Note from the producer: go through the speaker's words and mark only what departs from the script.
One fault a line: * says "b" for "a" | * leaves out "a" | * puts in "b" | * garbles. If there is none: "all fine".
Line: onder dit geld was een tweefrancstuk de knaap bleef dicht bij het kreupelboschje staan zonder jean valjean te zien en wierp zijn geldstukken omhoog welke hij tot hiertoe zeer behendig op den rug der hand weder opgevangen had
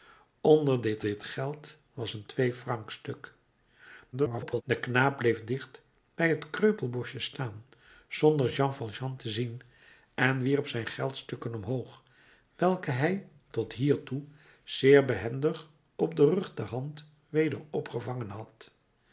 * puts in "dit"
* garbles